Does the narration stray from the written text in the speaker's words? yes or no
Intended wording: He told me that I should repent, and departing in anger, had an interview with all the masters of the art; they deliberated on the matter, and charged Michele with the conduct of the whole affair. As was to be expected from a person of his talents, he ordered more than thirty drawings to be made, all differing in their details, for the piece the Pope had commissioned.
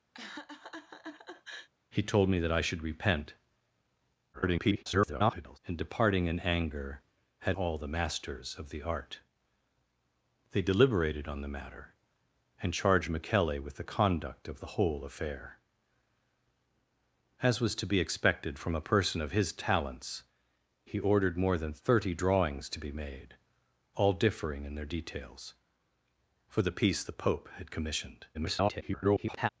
yes